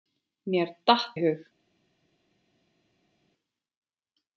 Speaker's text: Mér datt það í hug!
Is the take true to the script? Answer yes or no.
no